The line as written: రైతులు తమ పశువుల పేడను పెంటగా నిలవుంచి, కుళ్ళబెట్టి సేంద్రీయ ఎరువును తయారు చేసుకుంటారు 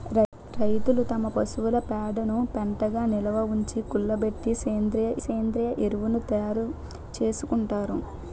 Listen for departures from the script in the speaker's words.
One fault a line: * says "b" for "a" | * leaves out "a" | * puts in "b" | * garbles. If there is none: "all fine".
* puts in "సేంద్రీయ"